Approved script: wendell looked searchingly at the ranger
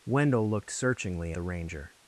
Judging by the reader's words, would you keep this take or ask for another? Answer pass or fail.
fail